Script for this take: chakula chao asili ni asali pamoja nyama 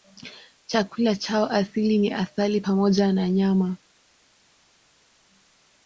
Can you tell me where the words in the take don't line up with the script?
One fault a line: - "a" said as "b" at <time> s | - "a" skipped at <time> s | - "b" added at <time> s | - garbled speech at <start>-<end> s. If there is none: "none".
- "na" added at 3.1 s